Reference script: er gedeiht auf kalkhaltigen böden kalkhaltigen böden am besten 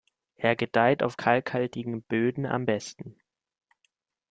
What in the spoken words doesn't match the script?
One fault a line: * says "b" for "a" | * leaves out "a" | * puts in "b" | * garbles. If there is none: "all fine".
* leaves out "kalkhaltigen böden"